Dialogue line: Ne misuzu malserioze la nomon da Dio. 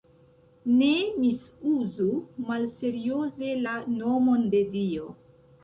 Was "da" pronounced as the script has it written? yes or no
no